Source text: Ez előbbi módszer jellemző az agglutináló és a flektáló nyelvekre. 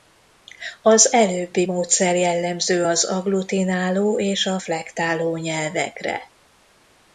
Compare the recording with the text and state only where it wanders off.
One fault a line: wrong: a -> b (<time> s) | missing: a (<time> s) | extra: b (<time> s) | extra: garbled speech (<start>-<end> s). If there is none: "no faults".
wrong: Ez -> Az (0.8 s)